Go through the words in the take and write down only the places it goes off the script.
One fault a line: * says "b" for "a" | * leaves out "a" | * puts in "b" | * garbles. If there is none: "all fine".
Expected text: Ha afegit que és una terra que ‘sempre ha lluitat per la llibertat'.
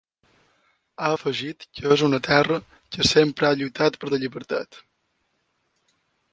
all fine